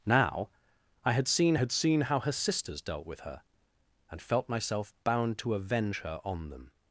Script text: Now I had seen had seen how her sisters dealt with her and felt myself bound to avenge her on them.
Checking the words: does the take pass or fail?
pass